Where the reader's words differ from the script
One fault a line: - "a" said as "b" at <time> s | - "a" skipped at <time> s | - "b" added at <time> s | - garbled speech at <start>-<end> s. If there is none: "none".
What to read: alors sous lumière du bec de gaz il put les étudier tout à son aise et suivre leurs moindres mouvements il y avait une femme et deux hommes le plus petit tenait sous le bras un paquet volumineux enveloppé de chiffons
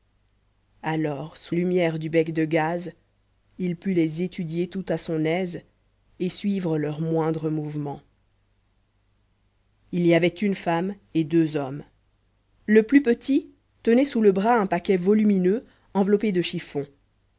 none